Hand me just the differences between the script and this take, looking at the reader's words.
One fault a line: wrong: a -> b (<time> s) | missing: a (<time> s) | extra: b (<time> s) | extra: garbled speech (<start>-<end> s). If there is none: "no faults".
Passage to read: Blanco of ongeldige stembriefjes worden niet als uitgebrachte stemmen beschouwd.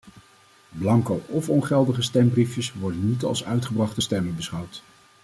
no faults